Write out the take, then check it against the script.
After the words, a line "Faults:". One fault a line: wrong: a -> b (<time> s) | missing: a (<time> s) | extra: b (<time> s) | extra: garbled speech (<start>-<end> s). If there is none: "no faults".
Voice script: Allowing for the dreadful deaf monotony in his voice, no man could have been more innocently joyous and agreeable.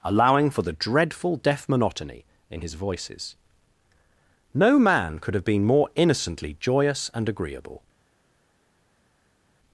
Allowing for the dreadful deaf monotony in his voices, no man could have been more innocently joyous and agreeable.
Faults:
wrong: voice -> voices (2.7 s)